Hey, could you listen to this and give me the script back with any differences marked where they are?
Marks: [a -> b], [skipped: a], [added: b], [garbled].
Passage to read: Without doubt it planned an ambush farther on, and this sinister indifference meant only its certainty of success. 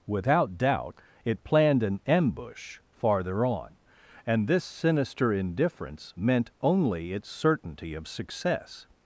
Without doubt it planned an ambush farther on, and this sinister indifference meant only its certainty of success.